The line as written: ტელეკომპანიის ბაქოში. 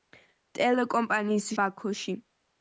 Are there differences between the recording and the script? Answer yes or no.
no